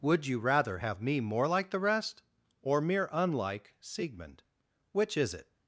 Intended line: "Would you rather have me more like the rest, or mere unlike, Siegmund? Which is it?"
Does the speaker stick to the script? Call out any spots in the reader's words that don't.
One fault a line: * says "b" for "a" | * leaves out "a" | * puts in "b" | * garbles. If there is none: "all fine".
all fine